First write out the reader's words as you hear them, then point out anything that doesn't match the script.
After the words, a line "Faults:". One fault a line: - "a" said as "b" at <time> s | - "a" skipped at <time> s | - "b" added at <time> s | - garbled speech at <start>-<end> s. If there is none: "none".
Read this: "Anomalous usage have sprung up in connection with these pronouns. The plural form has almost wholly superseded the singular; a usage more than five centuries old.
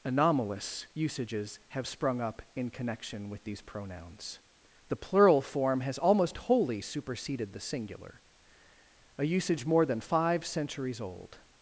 "Anomalous usages have sprung up in connection with these pronouns. The plural form has almost wholly superseded the singular; a usage more than five centuries old.
Faults:
- "usage" said as "usages" at 0.9 s